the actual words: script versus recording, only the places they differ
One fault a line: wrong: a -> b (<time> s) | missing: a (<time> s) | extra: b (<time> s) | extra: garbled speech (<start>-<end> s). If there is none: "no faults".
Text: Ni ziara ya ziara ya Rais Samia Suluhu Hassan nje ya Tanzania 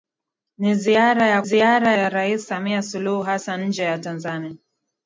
no faults